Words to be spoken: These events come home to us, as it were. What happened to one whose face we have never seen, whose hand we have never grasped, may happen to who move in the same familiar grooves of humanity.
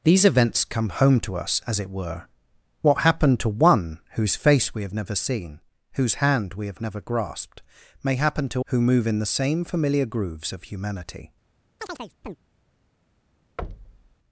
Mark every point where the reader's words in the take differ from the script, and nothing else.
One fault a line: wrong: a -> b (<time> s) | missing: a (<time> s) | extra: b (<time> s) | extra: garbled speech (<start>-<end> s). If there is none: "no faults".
no faults